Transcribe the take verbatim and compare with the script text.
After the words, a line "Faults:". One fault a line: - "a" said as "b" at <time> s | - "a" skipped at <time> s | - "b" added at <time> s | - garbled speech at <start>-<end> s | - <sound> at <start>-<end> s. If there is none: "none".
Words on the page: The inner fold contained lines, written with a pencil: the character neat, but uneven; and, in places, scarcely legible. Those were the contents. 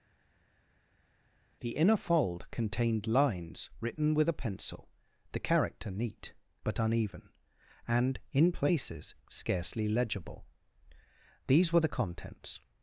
The inner fold contained lines, written with a pencil: the character neat, but uneven; and, in places, scarcely legible. These were the contents.
Faults:
- "Those" said as "These" at 11.5 s